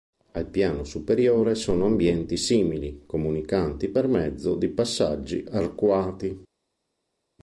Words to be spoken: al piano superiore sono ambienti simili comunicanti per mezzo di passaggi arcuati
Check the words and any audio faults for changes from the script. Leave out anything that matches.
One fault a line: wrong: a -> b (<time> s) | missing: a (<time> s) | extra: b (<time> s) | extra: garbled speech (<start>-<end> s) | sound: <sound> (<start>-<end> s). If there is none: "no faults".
no faults